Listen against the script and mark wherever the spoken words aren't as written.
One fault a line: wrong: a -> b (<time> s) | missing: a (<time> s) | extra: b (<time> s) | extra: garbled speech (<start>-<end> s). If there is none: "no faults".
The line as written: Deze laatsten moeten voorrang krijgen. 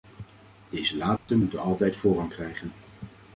extra: altijd (1.6 s)